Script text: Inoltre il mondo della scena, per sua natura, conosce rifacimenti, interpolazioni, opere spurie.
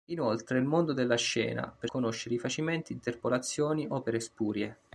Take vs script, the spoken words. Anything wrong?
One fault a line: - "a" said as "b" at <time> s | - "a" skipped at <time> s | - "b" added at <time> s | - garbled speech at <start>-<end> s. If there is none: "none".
- "sua natura" skipped at 1.9 s